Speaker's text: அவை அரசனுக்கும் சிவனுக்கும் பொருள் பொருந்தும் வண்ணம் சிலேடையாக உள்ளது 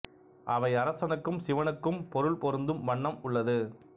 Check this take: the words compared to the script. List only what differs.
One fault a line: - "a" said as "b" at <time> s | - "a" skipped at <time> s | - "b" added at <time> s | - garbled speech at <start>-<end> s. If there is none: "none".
- "சிலேடையாக" skipped at 3.2 s